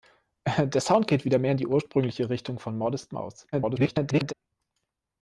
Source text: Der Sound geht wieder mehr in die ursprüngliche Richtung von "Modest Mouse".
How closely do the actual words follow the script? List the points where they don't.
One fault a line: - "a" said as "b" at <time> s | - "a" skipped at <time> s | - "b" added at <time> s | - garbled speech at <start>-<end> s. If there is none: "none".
- garbled speech at 3.5-4.3 s